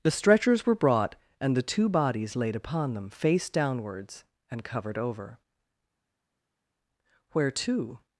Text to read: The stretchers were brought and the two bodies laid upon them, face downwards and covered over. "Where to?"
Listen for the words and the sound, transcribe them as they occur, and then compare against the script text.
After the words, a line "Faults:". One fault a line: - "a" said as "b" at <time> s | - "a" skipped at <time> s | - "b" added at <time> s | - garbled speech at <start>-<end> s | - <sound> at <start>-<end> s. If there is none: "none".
The stretchers were brought and the two bodies laid upon them, face downwards and covered over. "Where to?"
Faults:
none